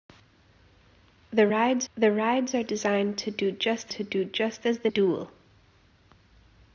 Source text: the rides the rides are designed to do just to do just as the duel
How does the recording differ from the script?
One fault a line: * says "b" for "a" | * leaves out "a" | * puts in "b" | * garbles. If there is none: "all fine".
all fine